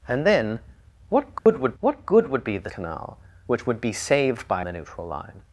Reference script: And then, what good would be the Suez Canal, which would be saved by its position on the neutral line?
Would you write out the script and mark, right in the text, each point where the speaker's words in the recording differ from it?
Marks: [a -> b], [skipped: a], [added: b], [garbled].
And then, what good would [added: what good would] be the [skipped: Suez] Canal, which would be saved by [skipped: its position on] the neutral line?